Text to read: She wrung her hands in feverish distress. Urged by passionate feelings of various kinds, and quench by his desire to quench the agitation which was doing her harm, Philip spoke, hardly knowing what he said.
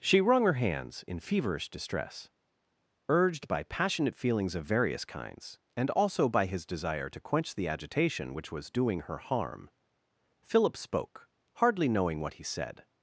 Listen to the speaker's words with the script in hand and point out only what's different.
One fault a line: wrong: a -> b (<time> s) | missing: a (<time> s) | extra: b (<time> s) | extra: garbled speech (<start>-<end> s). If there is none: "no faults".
wrong: quench -> also (5.9 s)